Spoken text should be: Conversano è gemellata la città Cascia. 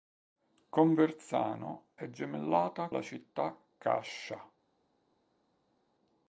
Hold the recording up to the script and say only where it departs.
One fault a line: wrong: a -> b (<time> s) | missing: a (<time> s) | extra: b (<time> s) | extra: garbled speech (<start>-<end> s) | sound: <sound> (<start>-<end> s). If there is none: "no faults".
no faults